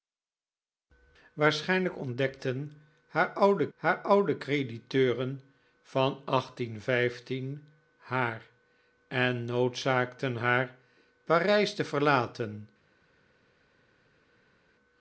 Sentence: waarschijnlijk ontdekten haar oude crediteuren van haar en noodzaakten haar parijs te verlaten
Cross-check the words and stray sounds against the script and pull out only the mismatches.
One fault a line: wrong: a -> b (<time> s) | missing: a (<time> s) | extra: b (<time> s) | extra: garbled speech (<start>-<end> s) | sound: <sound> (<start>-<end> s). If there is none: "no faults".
extra: haar oude (3.8 s)